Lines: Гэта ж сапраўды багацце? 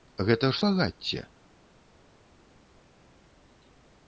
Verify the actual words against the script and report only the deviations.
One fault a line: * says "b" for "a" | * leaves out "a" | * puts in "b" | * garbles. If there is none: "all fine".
* leaves out "сапраўды"